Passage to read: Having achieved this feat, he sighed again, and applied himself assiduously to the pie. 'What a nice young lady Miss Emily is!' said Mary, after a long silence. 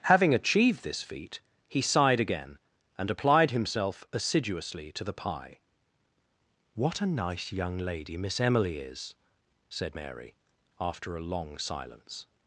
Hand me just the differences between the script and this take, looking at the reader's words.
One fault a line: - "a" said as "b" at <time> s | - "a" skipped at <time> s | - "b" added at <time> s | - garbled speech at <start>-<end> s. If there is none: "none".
none